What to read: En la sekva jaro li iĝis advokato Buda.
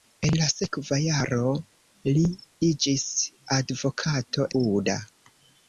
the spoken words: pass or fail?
pass